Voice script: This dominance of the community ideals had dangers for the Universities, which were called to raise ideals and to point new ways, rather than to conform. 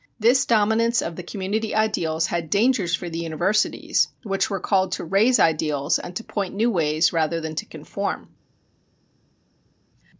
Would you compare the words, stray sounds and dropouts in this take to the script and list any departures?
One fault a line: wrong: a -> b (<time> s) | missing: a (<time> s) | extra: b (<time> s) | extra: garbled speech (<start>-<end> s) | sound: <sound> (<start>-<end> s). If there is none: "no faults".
no faults